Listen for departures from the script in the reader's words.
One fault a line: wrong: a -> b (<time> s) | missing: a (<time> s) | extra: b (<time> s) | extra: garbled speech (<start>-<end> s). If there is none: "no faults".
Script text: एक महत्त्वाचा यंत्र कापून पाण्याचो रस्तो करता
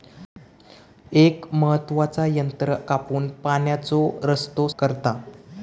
no faults